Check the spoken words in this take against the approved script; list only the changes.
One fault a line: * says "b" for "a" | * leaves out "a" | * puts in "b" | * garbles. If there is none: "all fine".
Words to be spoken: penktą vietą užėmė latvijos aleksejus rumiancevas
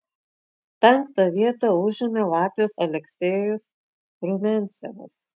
all fine